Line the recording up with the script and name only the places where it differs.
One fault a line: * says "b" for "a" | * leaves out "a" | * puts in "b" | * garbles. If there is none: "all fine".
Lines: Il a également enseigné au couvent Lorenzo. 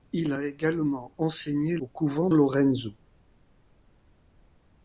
all fine